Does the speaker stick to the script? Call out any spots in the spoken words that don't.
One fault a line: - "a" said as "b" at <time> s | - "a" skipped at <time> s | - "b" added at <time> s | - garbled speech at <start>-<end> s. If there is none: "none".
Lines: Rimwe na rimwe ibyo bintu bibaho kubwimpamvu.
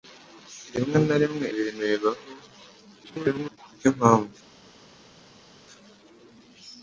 - "ibyo" skipped at 1.4 s
- garbled speech at 3.0-3.6 s